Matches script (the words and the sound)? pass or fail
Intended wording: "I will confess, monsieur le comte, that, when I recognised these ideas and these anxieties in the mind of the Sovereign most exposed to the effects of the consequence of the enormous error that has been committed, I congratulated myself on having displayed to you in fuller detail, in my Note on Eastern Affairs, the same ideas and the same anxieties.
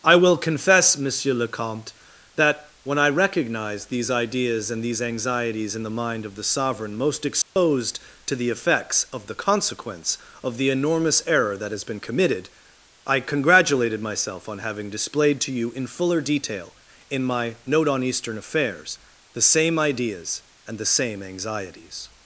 fail